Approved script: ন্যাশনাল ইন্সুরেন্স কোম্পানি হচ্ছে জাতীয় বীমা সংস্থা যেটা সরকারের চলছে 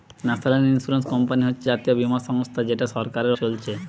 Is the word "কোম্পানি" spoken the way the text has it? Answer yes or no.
yes